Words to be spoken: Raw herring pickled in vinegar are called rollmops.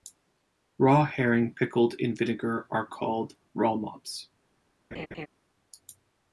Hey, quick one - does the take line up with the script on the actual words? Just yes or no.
yes